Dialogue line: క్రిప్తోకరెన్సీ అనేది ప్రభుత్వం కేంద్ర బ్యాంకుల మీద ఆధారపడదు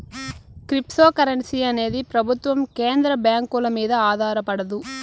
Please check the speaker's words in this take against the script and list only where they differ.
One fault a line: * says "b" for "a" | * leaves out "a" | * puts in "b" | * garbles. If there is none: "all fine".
all fine